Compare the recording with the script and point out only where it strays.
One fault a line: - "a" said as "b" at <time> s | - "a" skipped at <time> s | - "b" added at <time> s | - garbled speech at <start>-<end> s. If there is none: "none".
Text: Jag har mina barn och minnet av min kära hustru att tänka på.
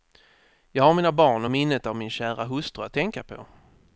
none